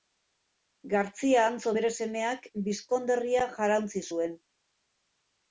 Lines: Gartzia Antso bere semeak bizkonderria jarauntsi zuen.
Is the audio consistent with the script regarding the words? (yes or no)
yes